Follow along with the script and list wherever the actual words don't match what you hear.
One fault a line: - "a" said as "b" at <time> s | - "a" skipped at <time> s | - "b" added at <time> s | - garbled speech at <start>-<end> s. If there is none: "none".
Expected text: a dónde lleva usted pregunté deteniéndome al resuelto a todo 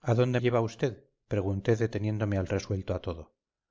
none